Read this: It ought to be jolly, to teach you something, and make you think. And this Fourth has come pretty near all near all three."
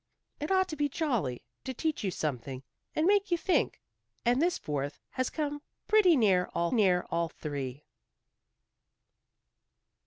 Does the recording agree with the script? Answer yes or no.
yes